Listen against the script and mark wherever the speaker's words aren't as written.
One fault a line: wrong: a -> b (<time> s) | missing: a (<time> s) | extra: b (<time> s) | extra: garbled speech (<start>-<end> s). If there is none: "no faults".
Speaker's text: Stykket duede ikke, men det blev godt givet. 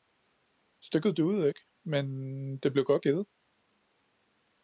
no faults